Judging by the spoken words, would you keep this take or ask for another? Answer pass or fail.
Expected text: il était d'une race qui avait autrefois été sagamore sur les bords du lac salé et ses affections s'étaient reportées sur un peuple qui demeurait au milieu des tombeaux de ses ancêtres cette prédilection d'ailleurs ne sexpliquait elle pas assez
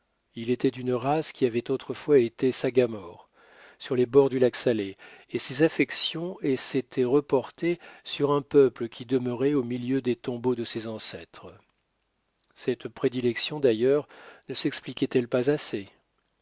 pass